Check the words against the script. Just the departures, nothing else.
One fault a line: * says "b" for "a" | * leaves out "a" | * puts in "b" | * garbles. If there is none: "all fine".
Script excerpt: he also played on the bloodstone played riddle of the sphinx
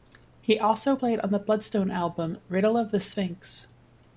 * says "album" for "played"